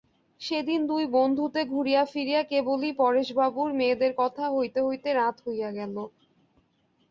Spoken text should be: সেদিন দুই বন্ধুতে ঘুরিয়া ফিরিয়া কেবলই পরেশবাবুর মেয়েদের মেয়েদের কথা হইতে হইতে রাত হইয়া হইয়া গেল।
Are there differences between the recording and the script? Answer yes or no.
yes